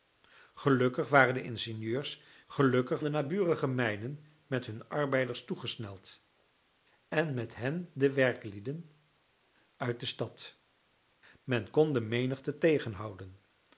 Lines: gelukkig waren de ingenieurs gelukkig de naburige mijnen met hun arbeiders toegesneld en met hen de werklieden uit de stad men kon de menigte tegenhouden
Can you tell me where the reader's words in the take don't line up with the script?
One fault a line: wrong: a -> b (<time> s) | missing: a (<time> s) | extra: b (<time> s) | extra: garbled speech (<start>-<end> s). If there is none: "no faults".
no faults